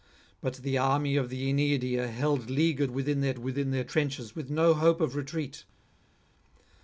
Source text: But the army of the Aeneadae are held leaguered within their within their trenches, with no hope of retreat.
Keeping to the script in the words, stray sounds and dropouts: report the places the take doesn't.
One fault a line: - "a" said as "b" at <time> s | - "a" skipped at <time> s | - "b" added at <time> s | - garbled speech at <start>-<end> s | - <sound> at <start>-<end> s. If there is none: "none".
none